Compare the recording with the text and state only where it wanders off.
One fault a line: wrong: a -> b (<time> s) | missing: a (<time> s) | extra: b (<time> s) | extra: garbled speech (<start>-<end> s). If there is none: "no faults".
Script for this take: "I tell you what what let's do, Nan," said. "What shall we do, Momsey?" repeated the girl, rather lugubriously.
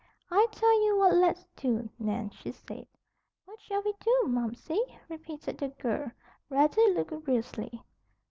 missing: what (1.1 s)
extra: she (2.3 s)